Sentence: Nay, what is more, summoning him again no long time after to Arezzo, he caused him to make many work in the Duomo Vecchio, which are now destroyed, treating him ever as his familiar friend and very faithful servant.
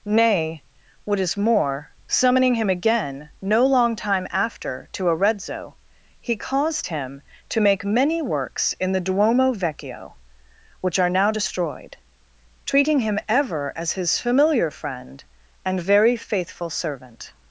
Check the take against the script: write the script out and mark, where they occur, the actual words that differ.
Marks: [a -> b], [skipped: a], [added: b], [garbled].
Nay, what is more, summoning him again no long time after to Arezzo, he caused him to make many [work -> works] in the Duomo Vecchio, which are now destroyed, treating him ever as his familiar friend and very faithful servant.